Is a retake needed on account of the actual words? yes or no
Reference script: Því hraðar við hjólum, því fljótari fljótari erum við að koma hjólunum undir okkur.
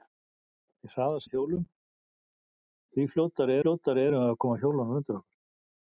no